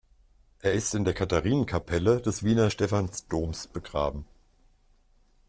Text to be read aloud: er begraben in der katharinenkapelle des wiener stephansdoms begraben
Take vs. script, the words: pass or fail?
fail